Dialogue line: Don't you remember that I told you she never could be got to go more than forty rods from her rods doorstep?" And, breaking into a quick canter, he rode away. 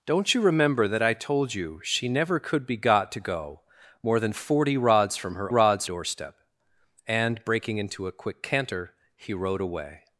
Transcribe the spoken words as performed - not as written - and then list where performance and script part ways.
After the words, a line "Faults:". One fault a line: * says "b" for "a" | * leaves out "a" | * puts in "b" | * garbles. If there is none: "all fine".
Don't you remember that I told you she never could be got to go more than forty rods from her rods doorstep?" And, breaking into a quick canter, he rode away.
Faults:
all fine